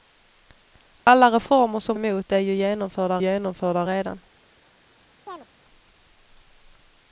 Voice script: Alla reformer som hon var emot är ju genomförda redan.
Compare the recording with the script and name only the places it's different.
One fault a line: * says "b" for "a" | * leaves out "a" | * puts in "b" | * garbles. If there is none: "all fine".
* leaves out "hon var"
* puts in "genomförda"